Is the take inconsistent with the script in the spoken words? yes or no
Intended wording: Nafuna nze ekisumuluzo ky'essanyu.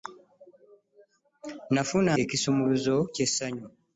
yes